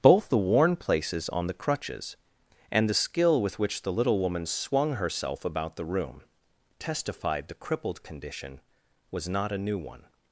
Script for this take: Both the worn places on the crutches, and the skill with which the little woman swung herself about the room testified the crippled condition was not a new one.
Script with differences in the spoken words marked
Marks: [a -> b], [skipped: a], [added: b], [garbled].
Both the worn places on the crutches, and the skill with which the little woman swung herself about the room testified the crippled condition was not a new one.